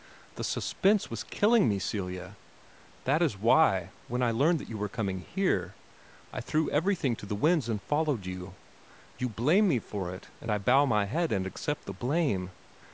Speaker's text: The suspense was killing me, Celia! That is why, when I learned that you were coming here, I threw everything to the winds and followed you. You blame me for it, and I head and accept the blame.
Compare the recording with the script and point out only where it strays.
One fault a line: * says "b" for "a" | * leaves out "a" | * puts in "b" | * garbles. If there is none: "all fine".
* puts in "bow my"